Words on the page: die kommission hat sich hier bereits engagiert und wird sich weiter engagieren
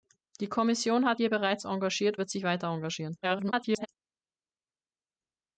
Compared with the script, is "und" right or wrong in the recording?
wrong